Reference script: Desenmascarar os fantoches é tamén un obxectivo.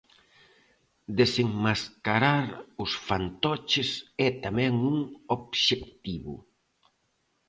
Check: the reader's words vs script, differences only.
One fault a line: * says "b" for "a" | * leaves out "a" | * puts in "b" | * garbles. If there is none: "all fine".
all fine